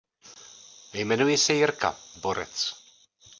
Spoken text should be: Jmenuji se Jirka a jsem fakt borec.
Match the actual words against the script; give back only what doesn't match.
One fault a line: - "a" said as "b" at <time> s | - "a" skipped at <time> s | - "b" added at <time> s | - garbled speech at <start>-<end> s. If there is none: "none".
- "a jsem fakt" skipped at 1.9 s